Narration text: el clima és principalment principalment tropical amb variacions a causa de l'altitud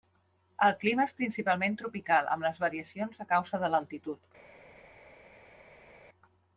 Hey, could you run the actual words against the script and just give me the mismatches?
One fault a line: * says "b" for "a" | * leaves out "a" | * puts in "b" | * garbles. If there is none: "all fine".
* leaves out "principalment"
* puts in "les"